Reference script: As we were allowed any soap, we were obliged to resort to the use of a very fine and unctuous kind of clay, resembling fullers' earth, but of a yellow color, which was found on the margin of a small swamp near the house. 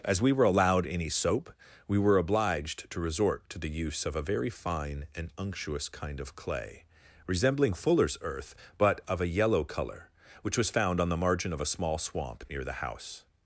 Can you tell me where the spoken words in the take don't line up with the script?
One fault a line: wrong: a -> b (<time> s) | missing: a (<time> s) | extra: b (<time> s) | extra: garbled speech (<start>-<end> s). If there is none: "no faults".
no faults